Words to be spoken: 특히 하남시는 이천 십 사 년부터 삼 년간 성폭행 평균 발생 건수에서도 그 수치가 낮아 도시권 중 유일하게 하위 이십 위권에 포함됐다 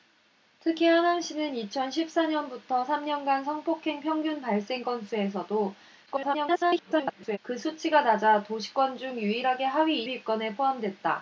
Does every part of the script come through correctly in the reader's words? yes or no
no